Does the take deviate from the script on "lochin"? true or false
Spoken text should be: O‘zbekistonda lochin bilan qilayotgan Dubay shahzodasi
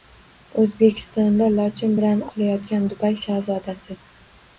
false